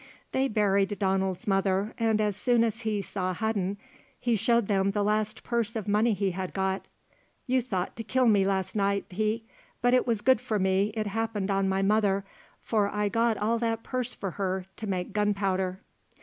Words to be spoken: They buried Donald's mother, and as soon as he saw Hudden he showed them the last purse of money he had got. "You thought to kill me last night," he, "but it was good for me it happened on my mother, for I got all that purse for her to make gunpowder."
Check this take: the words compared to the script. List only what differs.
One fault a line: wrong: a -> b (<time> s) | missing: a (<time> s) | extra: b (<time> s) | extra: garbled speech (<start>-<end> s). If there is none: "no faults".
no faults